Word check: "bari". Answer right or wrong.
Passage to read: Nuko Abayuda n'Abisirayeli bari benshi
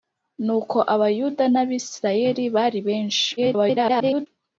right